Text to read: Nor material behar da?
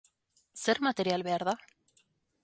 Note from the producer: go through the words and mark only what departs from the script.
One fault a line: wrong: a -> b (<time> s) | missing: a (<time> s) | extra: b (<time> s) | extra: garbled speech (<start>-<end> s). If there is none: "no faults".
wrong: Nor -> Zer (0.6 s)